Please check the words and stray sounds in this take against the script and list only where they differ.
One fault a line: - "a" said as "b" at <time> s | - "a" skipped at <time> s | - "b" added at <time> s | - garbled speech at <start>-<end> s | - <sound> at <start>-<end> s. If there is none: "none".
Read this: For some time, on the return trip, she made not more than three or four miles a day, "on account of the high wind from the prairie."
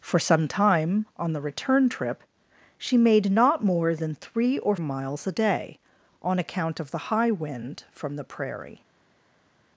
- "four" skipped at 4.8 s